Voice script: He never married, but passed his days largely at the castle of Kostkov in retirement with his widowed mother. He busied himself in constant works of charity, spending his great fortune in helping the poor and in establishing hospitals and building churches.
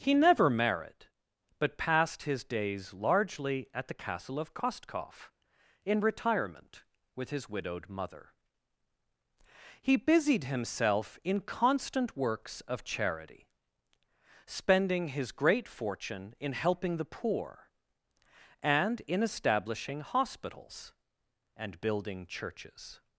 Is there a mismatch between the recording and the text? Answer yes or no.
no